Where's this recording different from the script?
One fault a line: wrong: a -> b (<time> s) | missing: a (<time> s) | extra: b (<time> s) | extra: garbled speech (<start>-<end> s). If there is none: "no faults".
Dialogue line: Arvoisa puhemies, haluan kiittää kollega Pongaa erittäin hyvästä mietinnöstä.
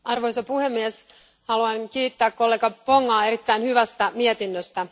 no faults